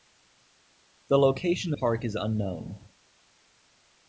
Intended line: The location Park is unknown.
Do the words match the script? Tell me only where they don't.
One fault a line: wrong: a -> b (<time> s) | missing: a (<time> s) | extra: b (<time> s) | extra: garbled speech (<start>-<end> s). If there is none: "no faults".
no faults